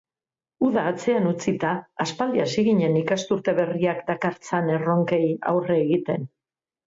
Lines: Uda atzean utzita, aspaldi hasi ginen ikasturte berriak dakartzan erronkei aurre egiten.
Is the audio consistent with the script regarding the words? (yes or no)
yes